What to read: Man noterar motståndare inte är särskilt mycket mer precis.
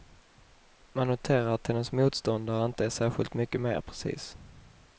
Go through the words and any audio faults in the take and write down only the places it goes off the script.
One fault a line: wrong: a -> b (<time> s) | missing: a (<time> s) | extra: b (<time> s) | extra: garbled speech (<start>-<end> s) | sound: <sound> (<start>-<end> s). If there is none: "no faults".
extra: att hennes (1.5 s)